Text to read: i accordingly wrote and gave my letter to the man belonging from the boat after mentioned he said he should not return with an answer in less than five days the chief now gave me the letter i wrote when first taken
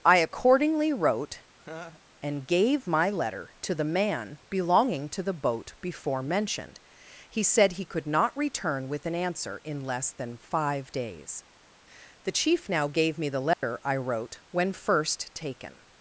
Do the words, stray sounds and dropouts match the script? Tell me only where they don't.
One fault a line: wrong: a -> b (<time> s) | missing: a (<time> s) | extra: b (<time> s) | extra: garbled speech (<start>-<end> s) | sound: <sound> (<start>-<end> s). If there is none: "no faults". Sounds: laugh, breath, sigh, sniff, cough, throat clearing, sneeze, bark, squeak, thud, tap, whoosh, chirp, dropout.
sound: laugh (1.6-2.0 s)
wrong: from -> to (5.1 s)
wrong: after -> before (5.8 s)
wrong: should -> could (7.8 s)
sound: dropout (13.5-13.6 s)